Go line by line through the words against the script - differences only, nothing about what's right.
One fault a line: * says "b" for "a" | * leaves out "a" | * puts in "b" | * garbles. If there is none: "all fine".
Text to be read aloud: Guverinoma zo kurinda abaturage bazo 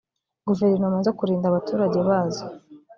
all fine